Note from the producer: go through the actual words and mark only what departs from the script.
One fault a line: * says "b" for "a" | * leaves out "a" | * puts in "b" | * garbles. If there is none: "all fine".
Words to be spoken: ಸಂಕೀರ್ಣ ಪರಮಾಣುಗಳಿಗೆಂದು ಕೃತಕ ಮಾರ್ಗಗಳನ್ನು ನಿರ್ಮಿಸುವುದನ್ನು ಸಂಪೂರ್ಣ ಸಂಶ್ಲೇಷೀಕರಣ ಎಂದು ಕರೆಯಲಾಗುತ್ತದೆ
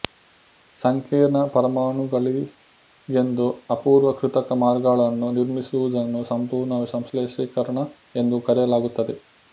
* puts in "ಅಪೂರ್ವ"